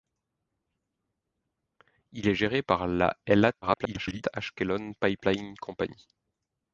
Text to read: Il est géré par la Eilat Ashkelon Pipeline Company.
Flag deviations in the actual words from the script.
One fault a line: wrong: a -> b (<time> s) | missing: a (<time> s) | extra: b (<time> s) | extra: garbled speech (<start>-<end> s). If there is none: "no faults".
extra: garbled speech (3.6-4.2 s)